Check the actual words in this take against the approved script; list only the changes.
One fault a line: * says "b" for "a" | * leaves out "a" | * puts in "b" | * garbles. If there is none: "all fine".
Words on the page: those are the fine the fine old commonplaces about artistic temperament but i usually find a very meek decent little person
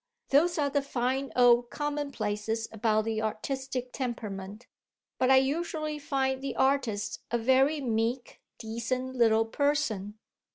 * leaves out "the fine"
* puts in "the"
* puts in "the artist"